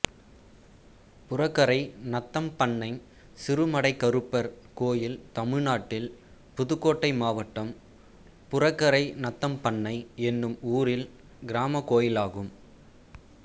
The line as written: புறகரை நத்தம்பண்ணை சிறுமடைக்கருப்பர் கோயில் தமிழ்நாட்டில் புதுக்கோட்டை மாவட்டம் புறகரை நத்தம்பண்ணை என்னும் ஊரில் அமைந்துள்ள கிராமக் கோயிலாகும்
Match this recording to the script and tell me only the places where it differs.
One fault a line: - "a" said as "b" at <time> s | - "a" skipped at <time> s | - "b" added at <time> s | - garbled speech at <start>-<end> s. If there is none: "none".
- "அமைந்துள்ள" skipped at 11.1 s